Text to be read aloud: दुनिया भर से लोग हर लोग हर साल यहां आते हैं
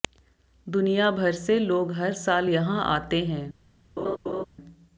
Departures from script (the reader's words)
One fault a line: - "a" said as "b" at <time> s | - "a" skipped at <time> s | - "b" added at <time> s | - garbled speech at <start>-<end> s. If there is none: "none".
- "लोग हर" skipped at 2.1 s